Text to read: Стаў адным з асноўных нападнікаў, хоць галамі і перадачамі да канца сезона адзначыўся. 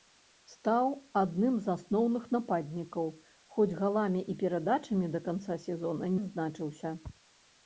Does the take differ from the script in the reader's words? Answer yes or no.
no